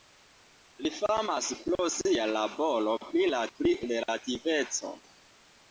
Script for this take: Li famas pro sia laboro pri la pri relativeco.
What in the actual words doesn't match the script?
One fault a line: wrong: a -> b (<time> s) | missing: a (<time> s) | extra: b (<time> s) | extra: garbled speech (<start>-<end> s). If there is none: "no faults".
no faults